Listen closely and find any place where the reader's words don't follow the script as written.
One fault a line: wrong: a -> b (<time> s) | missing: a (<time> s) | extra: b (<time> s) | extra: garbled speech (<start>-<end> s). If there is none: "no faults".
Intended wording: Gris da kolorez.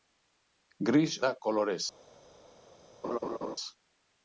no faults